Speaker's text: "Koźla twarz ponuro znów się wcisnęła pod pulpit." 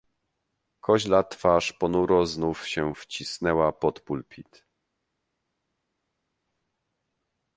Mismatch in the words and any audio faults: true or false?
false